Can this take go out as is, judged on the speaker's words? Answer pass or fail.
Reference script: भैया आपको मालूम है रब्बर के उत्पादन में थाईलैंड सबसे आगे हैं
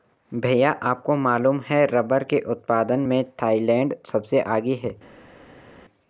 pass